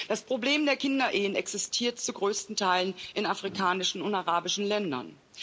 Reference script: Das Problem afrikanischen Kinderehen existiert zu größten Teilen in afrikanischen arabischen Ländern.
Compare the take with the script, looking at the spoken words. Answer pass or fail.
fail